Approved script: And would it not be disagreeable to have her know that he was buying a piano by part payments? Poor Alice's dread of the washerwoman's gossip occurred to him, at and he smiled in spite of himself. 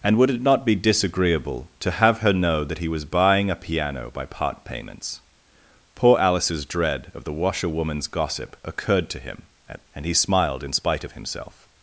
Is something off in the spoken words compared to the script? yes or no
no